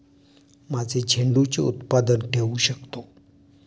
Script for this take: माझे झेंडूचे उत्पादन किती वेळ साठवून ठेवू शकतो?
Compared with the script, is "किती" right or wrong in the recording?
wrong